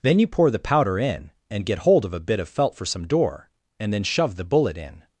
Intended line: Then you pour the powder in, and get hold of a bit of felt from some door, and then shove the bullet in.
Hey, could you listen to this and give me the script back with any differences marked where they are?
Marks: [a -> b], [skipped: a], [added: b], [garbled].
Then you pour the powder in, and get hold of a bit of felt [from -> for] some door, and then shove the bullet in.